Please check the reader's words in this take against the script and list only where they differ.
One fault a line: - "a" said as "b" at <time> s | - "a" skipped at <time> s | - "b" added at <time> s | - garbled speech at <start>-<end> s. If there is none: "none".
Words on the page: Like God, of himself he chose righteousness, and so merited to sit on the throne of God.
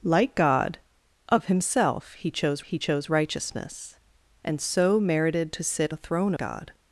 - "he chose" added at 2.6 s
- "on" skipped at 5.9 s
- "of" skipped at 6.3 s